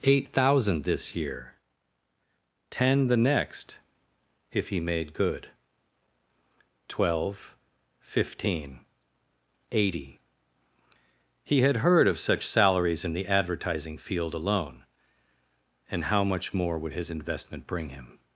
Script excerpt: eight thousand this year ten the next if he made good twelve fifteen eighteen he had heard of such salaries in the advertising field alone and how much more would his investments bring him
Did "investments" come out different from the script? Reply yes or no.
yes